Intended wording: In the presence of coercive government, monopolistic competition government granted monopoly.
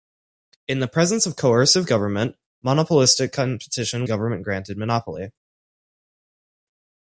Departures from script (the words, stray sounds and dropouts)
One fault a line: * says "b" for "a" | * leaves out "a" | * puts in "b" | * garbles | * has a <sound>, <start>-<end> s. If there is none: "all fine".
all fine